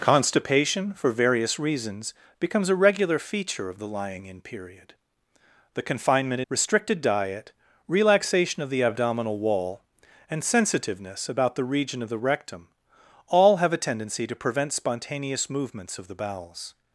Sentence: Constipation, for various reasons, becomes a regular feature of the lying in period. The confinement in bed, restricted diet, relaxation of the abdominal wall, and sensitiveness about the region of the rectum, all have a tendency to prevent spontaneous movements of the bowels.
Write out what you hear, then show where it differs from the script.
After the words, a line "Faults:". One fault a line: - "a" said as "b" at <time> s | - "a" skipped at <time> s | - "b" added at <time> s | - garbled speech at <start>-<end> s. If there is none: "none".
Constipation, for various reasons, becomes a regular feature of the lying in period. The confinement restricted diet, relaxation of the abdominal wall, and sensitiveness about the region of the rectum, all have a tendency to prevent spontaneous movements of the bowels.
Faults:
- "in bed" skipped at 6.4 s